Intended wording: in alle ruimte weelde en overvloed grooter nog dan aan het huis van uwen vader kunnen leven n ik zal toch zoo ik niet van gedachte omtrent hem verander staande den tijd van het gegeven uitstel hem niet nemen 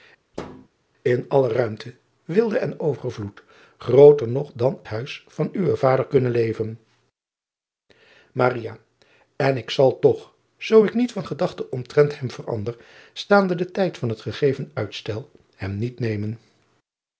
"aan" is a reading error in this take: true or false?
true